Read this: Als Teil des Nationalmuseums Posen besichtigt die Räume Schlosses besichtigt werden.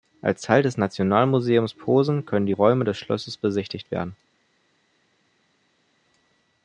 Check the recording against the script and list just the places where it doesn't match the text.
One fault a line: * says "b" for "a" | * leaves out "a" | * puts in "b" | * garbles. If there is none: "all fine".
* says "können" for "besichtigt"
* puts in "des"